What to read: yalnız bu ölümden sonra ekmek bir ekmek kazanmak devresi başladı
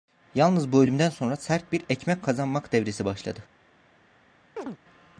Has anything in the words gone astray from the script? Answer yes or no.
yes